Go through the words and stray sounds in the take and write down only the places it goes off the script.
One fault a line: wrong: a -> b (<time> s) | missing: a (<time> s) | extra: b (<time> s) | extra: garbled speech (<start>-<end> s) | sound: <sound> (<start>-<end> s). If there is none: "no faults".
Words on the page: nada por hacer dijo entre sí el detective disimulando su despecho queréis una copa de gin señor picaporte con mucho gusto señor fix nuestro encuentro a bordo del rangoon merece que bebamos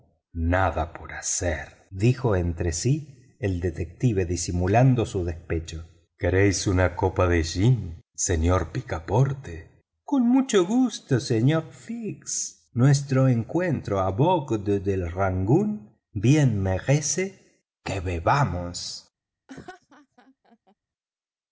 extra: bien (16.1 s)
sound: laugh (19.5-20.8 s)